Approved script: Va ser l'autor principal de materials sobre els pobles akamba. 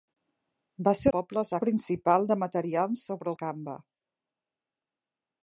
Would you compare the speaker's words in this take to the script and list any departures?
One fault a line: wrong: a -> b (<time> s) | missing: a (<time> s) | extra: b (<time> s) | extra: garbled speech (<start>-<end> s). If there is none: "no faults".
wrong: l'autor -> pobles (1.2 s)
missing: els pobles (3.3 s)